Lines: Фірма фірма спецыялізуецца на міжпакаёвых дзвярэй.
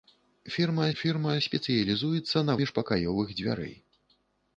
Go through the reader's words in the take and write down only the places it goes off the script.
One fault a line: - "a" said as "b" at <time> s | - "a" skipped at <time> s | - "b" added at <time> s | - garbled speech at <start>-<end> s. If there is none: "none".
none